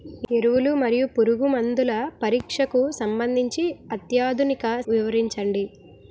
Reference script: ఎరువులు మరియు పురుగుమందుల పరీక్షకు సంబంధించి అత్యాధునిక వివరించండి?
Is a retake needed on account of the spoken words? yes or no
no